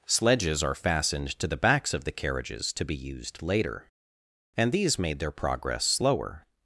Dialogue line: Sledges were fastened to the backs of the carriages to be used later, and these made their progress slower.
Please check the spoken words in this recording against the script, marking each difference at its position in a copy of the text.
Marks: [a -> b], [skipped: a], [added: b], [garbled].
Sledges [were -> are] fastened to the backs of the carriages to be used later, and these made their progress slower.